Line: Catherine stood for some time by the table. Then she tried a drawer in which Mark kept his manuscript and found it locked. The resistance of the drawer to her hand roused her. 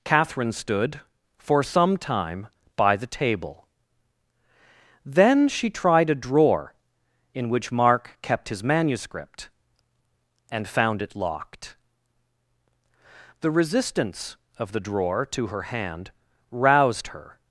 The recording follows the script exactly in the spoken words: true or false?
true